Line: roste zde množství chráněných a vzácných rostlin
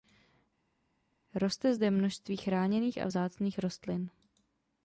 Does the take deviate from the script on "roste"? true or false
false